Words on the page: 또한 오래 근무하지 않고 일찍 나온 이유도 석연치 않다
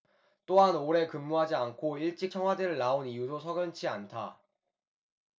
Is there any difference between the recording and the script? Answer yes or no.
yes